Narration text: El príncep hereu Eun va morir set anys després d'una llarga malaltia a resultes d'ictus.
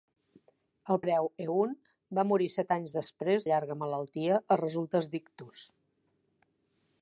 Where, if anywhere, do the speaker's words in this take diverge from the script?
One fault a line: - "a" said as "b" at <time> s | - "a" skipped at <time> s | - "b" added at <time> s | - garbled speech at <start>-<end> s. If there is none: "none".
- "príncep" skipped at 1.0 s
- "d'una" skipped at 3.5 s